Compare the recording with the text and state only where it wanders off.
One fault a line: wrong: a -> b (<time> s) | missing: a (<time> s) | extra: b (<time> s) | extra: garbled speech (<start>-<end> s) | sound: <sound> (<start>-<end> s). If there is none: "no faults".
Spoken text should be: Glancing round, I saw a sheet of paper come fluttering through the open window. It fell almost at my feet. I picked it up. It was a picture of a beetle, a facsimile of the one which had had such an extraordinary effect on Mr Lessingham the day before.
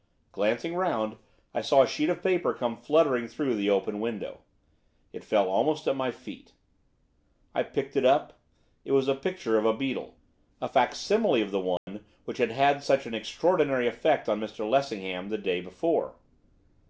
sound: dropout (11.8-11.9 s)